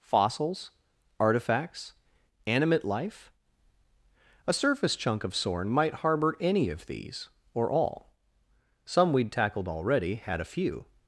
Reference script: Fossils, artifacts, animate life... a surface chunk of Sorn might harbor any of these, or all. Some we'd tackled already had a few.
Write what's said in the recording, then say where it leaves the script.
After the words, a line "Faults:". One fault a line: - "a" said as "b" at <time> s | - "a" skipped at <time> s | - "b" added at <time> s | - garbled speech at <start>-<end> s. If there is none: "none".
Fossils, artifacts, animate life... a surface chunk of Sorn might harbor any of these, or all. Some we'd tackled already had a few.
Faults:
none